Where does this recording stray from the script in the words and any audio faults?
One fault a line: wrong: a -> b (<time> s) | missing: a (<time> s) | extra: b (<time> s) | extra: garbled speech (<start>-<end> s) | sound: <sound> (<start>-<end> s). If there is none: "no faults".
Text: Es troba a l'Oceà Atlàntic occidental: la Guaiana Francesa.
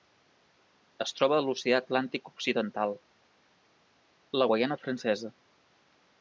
no faults